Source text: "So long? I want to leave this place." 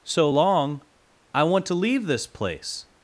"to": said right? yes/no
yes